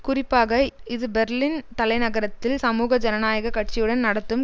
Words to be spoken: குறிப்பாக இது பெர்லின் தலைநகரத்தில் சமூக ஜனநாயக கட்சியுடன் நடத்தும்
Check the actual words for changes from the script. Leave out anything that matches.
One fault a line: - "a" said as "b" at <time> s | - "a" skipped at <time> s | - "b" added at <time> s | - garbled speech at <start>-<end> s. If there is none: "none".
none